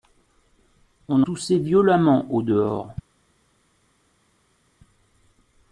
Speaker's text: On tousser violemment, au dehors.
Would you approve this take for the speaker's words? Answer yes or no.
yes